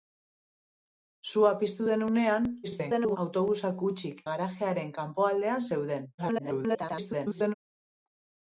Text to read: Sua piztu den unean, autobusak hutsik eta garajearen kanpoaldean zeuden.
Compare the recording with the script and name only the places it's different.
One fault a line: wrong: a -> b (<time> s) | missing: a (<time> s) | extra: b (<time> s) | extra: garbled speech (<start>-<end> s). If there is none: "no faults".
extra: garbled speech (2.6-3.2 s)
missing: eta (4.2 s)
extra: garbled speech (6.2-7.5 s)